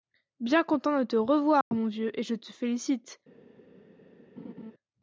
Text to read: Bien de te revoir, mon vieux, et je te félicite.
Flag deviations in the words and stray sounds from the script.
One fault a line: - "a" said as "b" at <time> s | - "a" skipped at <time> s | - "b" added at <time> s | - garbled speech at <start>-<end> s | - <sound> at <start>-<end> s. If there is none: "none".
- "content" added at 0.6 s
- dropout at 1.6-1.7 s
- laugh at 4.4-4.7 s